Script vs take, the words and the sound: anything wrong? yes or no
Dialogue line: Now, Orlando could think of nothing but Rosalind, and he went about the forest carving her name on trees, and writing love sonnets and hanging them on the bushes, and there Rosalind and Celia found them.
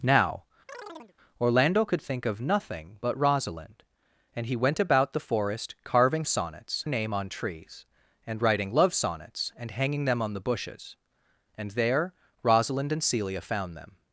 yes